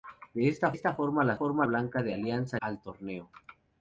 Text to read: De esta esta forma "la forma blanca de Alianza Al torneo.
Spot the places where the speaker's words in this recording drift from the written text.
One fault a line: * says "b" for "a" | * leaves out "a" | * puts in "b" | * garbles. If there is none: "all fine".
all fine